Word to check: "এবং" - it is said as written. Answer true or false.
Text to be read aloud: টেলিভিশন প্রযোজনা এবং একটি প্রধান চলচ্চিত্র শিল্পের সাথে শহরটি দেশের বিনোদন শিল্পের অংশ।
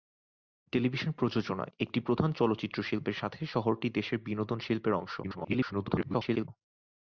false